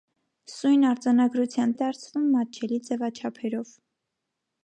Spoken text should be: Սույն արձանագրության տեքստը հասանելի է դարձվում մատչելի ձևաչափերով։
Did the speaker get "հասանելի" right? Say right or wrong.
wrong